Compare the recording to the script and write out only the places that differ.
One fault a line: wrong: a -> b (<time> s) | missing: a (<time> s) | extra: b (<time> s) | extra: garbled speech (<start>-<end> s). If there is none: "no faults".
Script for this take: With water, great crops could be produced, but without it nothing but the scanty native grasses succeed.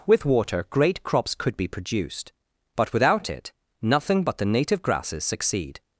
missing: scanty (4.5 s)